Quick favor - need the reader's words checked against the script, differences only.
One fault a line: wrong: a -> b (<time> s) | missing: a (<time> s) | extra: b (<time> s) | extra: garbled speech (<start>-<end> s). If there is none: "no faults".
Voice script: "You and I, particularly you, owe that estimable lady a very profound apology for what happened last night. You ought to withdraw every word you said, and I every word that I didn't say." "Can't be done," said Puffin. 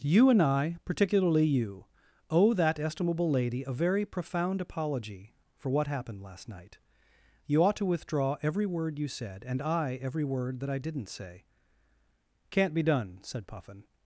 no faults